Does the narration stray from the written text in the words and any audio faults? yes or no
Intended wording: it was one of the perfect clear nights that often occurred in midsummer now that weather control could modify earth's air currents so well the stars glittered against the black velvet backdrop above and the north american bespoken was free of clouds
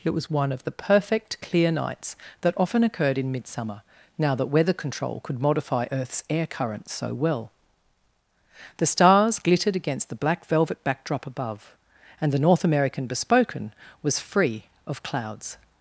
no